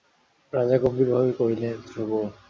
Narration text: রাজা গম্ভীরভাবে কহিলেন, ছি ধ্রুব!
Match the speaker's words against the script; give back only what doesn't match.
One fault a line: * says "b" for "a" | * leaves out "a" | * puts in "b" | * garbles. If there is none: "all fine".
* leaves out "ছি"